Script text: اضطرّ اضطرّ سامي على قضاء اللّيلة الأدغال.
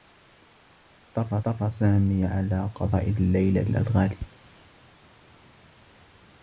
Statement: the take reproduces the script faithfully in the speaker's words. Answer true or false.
true